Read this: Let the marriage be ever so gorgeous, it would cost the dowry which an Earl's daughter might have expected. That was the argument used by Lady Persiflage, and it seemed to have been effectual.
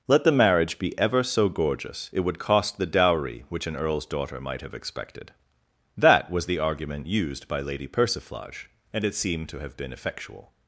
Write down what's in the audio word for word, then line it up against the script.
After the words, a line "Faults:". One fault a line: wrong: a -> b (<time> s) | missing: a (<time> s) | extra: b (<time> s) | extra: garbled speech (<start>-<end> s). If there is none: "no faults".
Let the marriage be ever so gorgeous, it would cost the dowry which an Earl's daughter might have expected. That was the argument used by Lady Persiflage, and it seemed to have been effectual.
Faults:
no faults